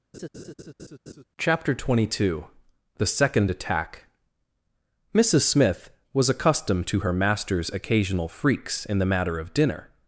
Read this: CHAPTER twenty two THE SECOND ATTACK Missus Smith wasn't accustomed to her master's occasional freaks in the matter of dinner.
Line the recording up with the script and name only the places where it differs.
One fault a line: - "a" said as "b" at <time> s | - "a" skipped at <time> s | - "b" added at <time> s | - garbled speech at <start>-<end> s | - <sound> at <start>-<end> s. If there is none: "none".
- laugh at 0.1-1.2 s
- "wasn't" said as "was" at 6.1 s